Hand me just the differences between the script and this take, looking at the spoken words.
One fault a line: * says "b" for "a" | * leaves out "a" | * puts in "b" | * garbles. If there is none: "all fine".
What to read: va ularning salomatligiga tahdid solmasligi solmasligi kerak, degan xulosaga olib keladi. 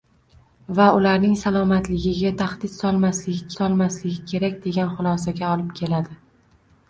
all fine